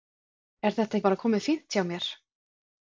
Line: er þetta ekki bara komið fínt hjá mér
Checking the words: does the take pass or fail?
fail